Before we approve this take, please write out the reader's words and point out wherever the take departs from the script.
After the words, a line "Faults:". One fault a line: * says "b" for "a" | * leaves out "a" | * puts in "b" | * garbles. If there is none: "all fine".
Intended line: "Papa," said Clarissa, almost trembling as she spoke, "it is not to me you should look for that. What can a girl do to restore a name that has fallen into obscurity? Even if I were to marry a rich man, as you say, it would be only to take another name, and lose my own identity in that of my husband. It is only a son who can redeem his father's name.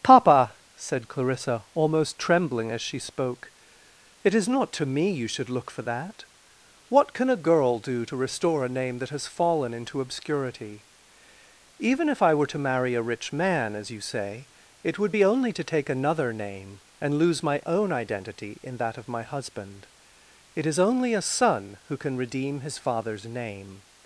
"Papa," said Clarissa, almost trembling as she spoke, "it is not to me you should look for that. What can a girl do to restore a name that has fallen into obscurity? Even if I were to marry a rich man, as you say, it would be only to take another name, and lose my own identity in that of my husband. It is only a son who can redeem his father's name.
Faults:
all fine